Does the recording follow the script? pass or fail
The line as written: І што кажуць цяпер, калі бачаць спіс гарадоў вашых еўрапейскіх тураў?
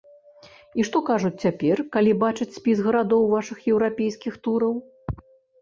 pass